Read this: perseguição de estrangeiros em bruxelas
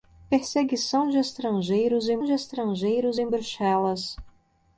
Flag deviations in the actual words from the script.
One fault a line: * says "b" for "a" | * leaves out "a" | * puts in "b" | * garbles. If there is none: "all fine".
* puts in "de estrangeiros em"